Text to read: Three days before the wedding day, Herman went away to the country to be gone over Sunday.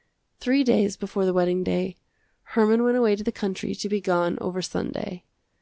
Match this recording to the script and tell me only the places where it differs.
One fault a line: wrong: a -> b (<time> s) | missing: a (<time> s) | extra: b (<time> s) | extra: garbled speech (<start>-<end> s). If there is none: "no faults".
no faults